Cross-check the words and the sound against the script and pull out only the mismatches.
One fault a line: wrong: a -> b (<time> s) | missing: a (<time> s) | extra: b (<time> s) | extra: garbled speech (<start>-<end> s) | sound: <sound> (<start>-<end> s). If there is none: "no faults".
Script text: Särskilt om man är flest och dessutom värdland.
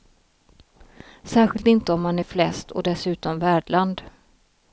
extra: inte (1.7 s)